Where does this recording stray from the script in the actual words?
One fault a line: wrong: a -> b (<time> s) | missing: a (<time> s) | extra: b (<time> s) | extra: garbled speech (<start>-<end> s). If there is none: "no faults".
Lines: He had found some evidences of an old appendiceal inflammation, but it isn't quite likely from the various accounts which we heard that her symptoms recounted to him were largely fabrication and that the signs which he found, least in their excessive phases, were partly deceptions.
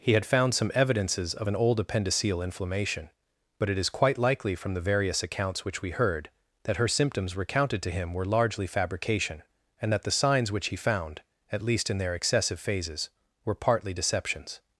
wrong: isn't -> is (3.8 s)
extra: at (11.5 s)